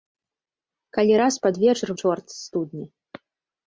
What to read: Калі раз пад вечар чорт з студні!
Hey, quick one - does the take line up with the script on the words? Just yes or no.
yes